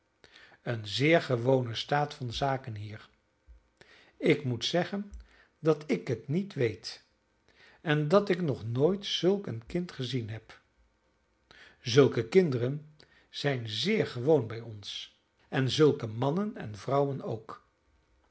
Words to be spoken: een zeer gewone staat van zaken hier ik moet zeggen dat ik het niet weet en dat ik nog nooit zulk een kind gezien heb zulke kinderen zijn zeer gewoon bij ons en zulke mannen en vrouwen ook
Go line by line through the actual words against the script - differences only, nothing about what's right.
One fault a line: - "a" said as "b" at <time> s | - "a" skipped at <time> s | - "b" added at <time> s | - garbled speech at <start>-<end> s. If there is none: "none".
none